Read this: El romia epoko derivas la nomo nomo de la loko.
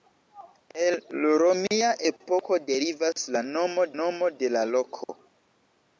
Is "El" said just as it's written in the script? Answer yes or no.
yes